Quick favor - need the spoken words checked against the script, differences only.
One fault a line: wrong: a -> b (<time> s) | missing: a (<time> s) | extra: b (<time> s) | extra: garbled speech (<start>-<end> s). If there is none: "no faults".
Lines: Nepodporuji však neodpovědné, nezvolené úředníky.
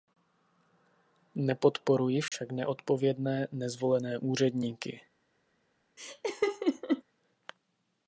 no faults